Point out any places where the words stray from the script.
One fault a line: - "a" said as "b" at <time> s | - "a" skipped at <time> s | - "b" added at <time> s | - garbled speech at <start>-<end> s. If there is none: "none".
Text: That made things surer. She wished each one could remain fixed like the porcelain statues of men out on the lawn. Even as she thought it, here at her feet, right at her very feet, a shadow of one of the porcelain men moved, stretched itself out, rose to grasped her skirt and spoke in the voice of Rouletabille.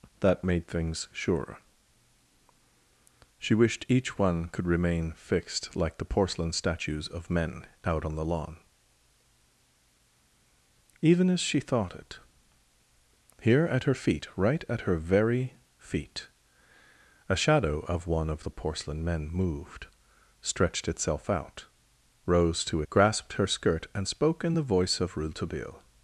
none